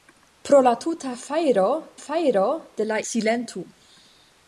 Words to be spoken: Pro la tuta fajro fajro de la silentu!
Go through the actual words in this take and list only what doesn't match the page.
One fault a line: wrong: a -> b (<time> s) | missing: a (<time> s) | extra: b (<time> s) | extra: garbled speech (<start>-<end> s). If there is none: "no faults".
no faults